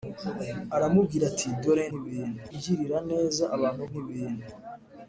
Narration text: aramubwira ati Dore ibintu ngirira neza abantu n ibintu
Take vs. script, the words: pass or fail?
pass